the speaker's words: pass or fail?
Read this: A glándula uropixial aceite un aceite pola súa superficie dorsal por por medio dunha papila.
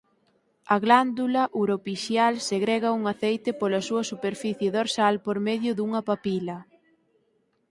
fail